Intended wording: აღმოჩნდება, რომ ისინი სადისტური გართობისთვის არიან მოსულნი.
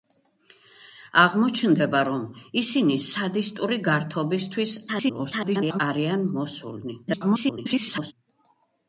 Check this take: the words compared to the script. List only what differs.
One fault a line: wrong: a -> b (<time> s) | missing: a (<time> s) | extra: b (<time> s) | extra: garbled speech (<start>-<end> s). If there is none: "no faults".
extra: garbled speech (4.9-5.8 s)
extra: garbled speech (7.1-8.1 s)